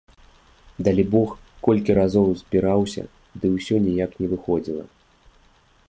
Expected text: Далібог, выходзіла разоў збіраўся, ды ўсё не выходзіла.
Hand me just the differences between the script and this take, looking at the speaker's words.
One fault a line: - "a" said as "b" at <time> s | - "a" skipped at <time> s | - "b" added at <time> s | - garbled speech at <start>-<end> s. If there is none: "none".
- "выходзіла" said as "колькі" at 1.7 s
- "ніяк" added at 3.9 s